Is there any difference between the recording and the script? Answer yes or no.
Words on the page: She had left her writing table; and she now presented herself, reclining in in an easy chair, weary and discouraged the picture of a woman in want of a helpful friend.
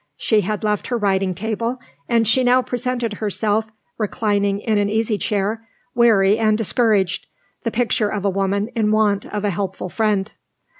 yes